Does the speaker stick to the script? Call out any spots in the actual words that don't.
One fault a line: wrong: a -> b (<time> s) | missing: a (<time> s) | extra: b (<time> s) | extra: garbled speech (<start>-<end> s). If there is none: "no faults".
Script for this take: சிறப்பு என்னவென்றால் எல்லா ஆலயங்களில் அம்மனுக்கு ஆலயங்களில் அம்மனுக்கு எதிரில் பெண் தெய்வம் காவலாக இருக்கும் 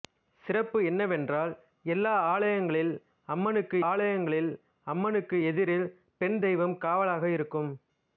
no faults